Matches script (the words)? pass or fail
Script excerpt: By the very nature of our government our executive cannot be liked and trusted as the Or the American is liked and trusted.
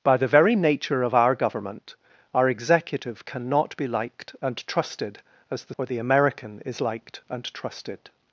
pass